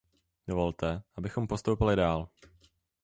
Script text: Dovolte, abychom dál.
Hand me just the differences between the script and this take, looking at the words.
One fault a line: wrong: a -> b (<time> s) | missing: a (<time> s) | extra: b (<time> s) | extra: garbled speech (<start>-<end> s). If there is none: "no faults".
extra: postoupili (1.5 s)